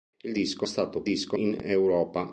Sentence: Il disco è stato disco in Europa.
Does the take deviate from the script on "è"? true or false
false